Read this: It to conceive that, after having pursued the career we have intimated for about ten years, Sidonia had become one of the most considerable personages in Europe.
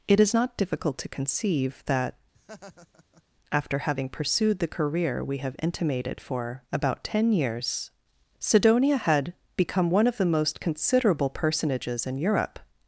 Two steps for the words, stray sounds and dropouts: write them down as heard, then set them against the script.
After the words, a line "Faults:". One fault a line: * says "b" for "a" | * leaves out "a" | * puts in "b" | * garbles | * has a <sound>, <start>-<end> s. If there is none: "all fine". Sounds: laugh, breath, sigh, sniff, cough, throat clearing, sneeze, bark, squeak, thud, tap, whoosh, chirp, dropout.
It is not difficult to conceive that, after having pursued the career we have intimated for about ten years, Sidonia had become one of the most considerable personages in Europe.
Faults:
* puts in "is not difficult"
* has a laugh, 2.3-3.2 s